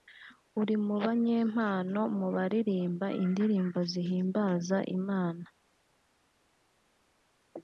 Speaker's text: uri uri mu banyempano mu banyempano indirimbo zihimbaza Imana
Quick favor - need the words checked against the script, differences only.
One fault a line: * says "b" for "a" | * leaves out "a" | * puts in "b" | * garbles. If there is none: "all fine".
* leaves out "uri"
* says "baririmba" for "banyempano"